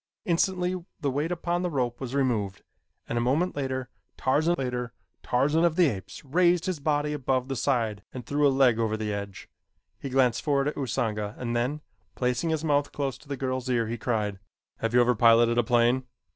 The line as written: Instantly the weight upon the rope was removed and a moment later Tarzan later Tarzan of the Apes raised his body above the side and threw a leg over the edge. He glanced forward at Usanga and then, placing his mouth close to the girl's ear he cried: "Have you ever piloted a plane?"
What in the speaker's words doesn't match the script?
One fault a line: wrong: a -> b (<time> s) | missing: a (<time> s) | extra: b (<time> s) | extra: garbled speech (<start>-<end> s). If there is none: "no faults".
no faults